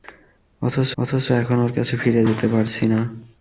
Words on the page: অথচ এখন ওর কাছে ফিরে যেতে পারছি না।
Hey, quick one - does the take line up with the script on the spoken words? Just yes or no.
no